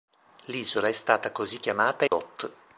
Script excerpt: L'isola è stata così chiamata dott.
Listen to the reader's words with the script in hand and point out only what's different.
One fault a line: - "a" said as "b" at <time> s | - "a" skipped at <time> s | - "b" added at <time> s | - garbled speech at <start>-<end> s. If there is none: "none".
none